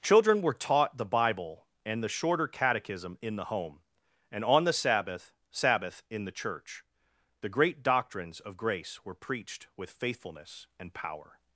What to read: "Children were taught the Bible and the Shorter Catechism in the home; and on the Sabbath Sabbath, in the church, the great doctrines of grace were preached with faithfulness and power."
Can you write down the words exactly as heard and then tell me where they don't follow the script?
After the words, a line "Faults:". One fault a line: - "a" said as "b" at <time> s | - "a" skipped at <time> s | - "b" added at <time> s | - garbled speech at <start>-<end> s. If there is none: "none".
"Children were taught the Bible and the Shorter Catechism in the home; and on the Sabbath Sabbath, in the church, the great doctrines of grace were preached with faithfulness and power."
Faults:
none